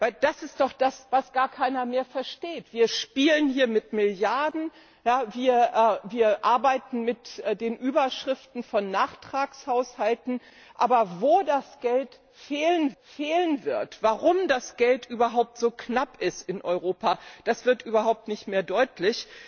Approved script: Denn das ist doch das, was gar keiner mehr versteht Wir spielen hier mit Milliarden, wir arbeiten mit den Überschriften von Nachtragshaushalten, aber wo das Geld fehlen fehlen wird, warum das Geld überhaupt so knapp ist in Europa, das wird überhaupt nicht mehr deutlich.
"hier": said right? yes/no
yes